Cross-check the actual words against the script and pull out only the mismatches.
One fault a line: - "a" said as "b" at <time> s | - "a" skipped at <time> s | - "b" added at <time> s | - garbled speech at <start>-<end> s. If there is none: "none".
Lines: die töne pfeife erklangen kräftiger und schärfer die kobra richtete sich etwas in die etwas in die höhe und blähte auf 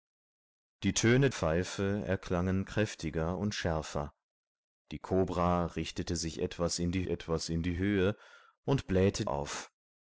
none